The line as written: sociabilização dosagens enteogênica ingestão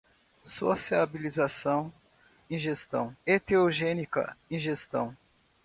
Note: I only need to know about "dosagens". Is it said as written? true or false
false